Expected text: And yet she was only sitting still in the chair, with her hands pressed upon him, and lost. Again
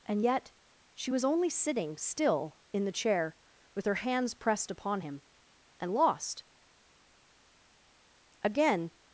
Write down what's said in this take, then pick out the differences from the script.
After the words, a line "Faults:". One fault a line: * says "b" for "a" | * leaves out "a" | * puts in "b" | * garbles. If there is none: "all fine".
And yet she was only sitting still in the chair, with her hands pressed upon him, and lost. Again
Faults:
all fine